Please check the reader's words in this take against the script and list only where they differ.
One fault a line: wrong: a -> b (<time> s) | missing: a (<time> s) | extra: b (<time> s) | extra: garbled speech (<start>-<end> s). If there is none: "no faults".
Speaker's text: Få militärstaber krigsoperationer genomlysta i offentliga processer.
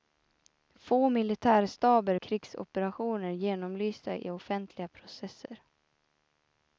no faults